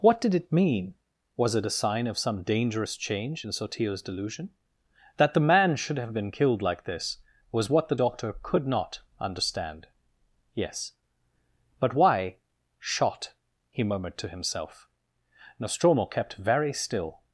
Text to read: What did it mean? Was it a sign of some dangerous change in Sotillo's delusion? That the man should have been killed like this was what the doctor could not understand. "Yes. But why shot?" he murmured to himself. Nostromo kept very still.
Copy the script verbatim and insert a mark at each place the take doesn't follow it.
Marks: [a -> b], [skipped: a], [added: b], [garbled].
What did it mean? Was it a sign of some dangerous change in Sotillo's delusion? That the man should have been killed like this was what the doctor could not understand. "Yes. But why shot?" he murmured to himself. Nostromo kept very still.